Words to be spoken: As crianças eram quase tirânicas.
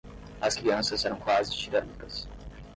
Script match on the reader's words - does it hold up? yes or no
yes